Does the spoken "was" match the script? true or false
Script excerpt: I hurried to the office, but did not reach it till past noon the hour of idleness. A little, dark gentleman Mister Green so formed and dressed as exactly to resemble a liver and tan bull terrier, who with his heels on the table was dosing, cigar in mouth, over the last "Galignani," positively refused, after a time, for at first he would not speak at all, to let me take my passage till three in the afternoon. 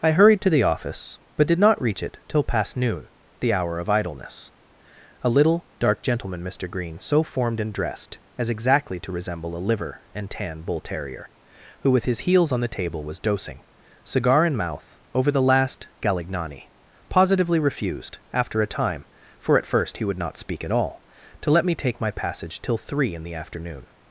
true